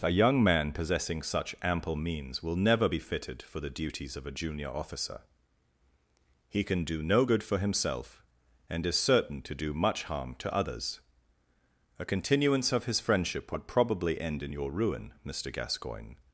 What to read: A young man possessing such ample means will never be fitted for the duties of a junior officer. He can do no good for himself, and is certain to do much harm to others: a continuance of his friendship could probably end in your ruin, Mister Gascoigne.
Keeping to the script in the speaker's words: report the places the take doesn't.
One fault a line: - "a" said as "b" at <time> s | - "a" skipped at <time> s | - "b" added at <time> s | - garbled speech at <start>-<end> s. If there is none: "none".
- "could" said as "would" at 13.5 s